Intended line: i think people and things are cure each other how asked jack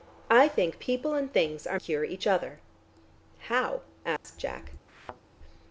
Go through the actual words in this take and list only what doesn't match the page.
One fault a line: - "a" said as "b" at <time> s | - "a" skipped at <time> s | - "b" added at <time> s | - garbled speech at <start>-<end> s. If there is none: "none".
none